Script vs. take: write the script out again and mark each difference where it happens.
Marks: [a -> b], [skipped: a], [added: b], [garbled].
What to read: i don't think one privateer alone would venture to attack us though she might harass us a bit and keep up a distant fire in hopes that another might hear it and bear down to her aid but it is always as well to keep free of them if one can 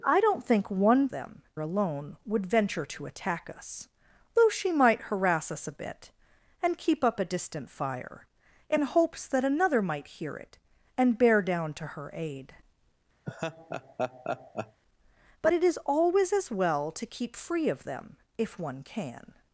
i don't think one [privateer -> them] alone would venture to attack us though she might harass us a bit and keep up a distant fire in hopes that another might hear it and bear down to her aid but it is always as well to keep free of them if one can